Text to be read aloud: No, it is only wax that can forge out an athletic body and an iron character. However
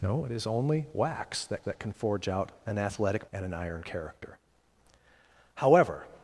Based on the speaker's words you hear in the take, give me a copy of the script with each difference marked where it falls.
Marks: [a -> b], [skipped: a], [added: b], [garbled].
No, it is only wax that [added: that] can forge out an athletic [skipped: body] and an iron character. However